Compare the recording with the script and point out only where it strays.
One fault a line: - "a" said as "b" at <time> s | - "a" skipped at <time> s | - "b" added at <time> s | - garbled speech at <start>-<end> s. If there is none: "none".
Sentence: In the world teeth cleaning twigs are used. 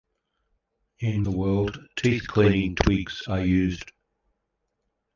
none